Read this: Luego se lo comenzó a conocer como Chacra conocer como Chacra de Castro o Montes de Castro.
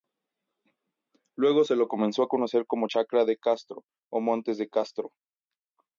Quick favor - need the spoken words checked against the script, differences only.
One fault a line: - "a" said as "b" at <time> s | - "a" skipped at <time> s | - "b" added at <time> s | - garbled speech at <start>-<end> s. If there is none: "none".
- "conocer como Chacra" skipped at 3.2 s